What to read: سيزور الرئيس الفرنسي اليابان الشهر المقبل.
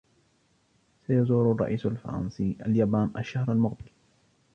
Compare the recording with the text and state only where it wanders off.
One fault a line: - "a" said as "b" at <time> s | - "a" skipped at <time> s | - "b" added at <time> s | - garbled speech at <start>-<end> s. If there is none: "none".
none